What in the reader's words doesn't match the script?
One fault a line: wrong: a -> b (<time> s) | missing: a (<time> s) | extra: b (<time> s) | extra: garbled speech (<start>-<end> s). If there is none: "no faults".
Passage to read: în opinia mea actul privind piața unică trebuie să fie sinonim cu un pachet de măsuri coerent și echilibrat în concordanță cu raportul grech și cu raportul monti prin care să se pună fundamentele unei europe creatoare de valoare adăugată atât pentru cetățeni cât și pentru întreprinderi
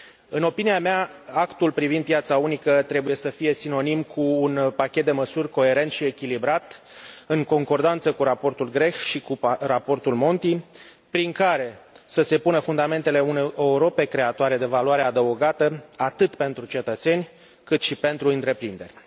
no faults